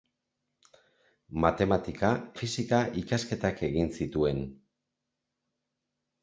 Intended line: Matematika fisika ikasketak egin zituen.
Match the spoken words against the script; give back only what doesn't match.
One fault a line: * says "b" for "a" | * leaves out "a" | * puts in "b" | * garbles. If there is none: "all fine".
all fine